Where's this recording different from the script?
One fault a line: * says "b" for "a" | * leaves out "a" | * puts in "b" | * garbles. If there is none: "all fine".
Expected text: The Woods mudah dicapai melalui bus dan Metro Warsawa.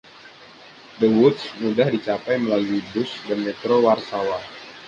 all fine